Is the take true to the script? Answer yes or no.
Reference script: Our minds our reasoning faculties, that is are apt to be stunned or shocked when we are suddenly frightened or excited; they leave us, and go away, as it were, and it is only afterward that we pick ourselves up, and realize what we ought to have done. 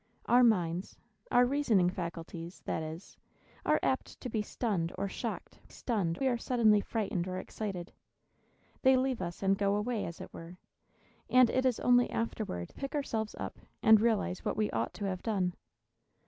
no